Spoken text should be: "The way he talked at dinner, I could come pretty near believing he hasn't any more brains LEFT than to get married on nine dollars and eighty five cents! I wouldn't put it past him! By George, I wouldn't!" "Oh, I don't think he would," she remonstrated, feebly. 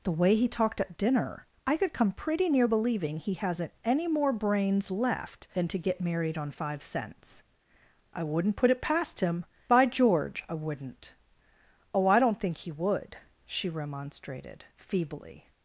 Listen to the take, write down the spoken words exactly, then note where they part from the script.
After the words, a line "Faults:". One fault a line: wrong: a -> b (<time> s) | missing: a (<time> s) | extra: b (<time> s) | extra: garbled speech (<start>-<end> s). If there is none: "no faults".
"The way he talked at dinner, I could come pretty near believing he hasn't any more brains LEFT than to get married on five cents! I wouldn't put it past him! By George, I wouldn't!" "Oh, I don't think he would," she remonstrated, feebly.
Faults:
missing: nine dollars and eighty (6.5 s)